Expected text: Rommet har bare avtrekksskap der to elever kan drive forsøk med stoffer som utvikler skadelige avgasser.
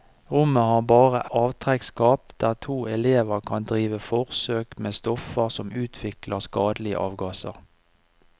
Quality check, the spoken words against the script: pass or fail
pass